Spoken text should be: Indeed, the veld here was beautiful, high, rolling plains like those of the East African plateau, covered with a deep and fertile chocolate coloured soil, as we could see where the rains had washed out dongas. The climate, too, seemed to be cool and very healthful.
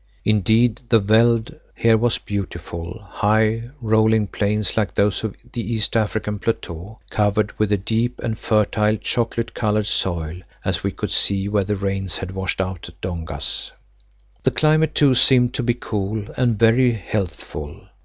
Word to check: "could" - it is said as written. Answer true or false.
true